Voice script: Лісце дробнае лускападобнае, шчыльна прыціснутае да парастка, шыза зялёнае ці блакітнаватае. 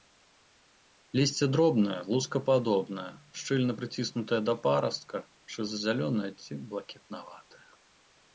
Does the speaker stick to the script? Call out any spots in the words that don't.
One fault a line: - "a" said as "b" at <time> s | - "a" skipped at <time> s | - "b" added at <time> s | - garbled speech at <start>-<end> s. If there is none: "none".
none